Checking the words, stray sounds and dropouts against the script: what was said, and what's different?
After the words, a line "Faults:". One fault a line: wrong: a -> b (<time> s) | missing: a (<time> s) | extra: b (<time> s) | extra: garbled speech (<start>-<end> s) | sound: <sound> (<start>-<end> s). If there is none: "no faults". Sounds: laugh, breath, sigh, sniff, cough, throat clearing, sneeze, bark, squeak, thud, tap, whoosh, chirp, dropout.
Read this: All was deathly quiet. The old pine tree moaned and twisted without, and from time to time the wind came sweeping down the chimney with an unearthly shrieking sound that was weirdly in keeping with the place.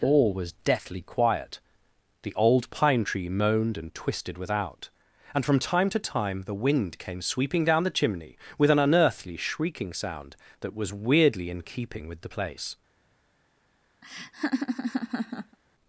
All was deathly quiet. The old pine tree moaned and twisted without, and from time to time the wind came sweeping down the chimney with an unearthly shrieking sound that was weirdly in keeping with the place.
Faults:
sound: laugh (14.0-15.6 s)